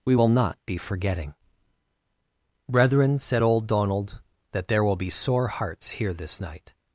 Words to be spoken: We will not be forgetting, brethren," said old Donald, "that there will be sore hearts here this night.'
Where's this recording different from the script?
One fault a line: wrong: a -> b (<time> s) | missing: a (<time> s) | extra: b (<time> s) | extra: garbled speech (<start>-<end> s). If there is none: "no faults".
no faults